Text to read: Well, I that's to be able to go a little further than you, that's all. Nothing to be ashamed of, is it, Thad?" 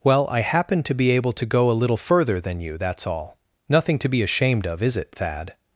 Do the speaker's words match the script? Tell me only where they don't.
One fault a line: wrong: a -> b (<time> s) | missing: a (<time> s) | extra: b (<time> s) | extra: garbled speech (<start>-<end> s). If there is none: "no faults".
wrong: that's -> happen (0.4 s)